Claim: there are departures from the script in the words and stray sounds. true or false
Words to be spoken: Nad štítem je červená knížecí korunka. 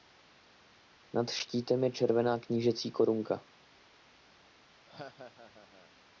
true